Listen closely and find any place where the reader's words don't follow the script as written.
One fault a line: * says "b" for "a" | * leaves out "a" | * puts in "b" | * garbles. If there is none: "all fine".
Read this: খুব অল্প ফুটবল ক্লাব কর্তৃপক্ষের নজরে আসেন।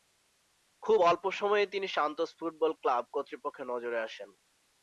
* puts in "সময়েই তিনি সান্তোস"